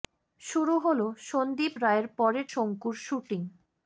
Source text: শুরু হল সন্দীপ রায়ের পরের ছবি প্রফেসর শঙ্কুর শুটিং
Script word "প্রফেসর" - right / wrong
wrong